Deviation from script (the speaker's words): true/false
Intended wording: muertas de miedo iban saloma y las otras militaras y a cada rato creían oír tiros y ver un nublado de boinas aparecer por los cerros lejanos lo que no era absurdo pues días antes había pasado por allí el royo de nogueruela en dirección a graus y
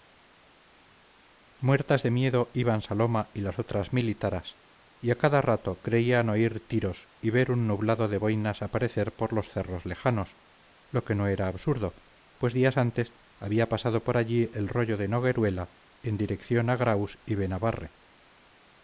false